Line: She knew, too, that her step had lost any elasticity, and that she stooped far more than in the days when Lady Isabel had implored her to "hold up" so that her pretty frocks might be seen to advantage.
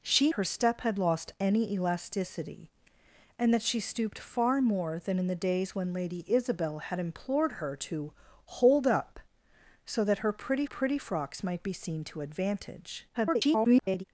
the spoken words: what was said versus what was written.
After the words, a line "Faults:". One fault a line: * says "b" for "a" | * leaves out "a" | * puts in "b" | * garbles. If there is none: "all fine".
She her step had lost any elasticity, and that she stooped far more than in the days when Lady Isabel had implored her to "hold up" so that her pretty pretty frocks might be seen to advantage. [garbled]
Faults:
* leaves out "knew too that"
* puts in "pretty"
* garbles